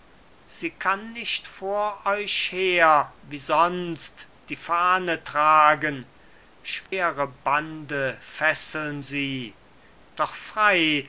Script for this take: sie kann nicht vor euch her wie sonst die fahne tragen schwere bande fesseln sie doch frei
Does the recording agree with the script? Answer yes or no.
yes